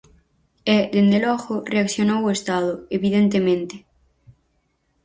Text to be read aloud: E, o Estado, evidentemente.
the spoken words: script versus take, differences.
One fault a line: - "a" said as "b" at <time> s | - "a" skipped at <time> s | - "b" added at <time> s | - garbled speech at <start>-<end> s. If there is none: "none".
- "dende logo reaccionou" added at 0.9 s